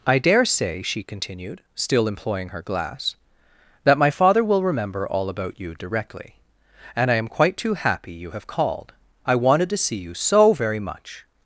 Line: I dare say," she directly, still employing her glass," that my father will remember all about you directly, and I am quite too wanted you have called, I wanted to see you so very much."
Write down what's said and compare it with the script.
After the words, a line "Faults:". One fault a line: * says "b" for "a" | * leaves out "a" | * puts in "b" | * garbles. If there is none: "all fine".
I dare say," she continued, still employing her glass," that my father will remember all about you directly, and I am quite too happy you have called, I wanted to see you so very much."
Faults:
* says "continued" for "directly"
* says "happy" for "wanted"